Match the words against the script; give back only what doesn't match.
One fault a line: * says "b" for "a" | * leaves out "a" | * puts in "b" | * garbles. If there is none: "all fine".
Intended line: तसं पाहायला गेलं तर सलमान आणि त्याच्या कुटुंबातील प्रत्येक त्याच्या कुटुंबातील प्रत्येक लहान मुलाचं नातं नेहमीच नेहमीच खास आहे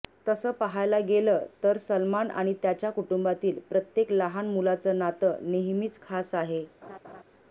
* leaves out "त्याच्या कुटुंबातील प्रत्येक"
* leaves out "नेहमीच"